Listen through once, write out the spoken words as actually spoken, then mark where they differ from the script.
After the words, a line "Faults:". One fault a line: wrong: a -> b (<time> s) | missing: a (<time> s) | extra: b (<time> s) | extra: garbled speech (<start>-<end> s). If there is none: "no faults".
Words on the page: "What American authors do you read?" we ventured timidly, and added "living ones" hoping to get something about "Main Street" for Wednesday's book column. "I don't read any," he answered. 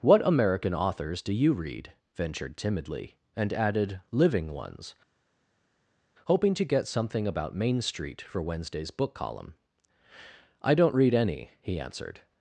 "What American authors do you read?" ventured timidly, and added "living ones" hoping to get something about "Main Street" for Wednesday's book column. "I don't read any," he answered.
Faults:
missing: we (1.9 s)